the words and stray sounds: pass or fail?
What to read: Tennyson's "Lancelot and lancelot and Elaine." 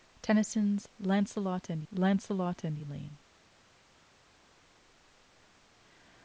pass